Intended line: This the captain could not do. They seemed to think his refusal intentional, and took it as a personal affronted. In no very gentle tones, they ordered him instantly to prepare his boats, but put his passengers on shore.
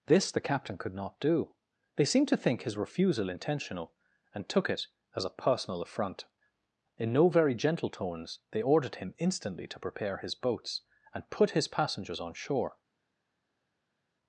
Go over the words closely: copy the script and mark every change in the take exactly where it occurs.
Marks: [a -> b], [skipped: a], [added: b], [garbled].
This the captain could not do. They seemed to think his refusal intentional, and took it as a personal [affronted. -> affront] In no very gentle tones, they ordered him instantly to prepare his boats, [but -> and] put his passengers on shore.